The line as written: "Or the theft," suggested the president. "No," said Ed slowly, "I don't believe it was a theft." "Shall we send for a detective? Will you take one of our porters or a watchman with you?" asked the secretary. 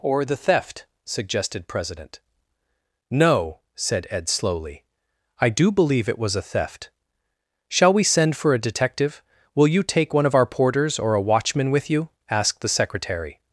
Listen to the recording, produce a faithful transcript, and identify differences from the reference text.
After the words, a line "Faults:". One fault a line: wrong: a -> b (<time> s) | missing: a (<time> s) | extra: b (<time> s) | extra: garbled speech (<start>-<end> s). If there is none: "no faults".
"Or the theft," suggested president. "No," said Ed slowly, "I do believe it was a theft." "Shall we send for a detective? Will you take one of our porters or a watchman with you?" asked the secretary.
Faults:
missing: the (1.7 s)
wrong: don't -> do (5.5 s)